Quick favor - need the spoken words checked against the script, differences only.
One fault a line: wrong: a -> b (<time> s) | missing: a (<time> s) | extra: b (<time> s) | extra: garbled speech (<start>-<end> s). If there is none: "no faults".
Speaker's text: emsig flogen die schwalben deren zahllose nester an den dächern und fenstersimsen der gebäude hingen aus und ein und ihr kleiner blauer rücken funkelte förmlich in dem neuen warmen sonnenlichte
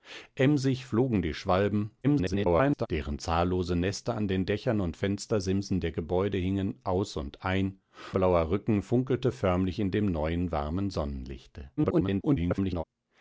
extra: garbled speech (2.0-2.9 s)
missing: und ihr kleiner (7.8 s)
extra: garbled speech (11.8-12.8 s)